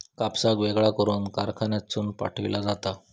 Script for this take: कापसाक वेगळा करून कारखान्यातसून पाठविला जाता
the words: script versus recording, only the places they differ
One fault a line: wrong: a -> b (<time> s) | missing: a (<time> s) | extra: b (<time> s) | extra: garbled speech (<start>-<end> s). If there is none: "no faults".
no faults